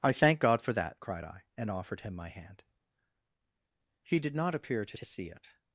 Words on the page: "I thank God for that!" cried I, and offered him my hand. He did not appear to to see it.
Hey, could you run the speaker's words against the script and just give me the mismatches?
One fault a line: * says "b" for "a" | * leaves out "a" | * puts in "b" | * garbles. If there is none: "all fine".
all fine